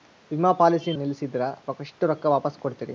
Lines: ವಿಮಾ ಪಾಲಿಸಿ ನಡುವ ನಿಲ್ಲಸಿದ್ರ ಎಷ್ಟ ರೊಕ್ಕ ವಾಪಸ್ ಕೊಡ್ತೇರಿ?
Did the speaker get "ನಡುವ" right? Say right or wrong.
wrong